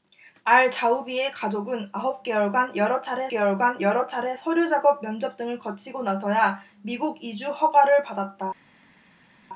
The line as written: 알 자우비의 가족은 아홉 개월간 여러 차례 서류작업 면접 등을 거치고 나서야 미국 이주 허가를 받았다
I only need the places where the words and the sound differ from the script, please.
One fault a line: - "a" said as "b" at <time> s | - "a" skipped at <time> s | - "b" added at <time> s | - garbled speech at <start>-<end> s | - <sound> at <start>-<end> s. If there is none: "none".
- "개월간 여러 차례" added at 3.3 s